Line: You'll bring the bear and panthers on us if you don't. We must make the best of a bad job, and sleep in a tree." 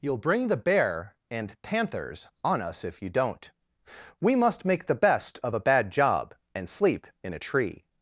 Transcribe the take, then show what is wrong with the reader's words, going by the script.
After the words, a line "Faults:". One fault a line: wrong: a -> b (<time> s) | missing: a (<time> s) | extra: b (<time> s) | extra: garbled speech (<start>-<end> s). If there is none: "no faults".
You'll bring the bear and panthers on us if you don't. We must make the best of a bad job, and sleep in a tree."
Faults:
no faults